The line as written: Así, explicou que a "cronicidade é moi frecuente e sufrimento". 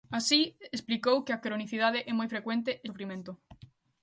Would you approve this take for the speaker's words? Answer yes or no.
yes